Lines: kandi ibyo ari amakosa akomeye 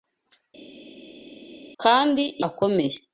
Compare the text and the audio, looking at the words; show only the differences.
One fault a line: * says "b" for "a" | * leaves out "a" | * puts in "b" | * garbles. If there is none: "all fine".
* leaves out "ibyo ari amakosa"